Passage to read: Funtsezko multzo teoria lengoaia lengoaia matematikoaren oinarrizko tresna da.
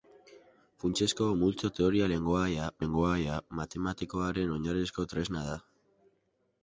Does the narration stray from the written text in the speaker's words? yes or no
no